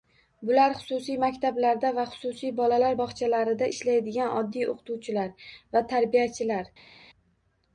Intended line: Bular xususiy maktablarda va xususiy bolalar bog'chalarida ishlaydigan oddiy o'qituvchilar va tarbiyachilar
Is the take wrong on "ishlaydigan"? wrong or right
right